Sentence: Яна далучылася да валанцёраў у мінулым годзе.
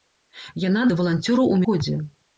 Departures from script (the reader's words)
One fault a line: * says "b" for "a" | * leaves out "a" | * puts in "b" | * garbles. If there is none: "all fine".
* leaves out "далучылася"
* leaves out "мінулым"